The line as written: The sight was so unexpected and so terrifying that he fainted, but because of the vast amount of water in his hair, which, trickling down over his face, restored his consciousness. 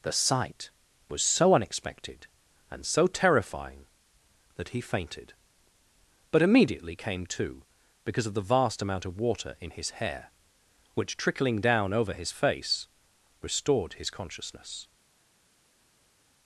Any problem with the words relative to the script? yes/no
yes